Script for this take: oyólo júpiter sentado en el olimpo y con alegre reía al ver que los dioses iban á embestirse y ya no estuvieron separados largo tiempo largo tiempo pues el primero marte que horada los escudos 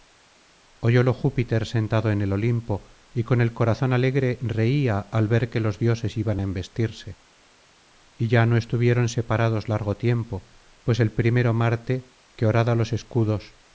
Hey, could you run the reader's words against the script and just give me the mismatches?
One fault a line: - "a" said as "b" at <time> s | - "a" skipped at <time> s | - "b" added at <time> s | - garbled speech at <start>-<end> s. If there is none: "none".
- "el corazón" added at 3.4 s
- "largo tiempo" skipped at 10.5 s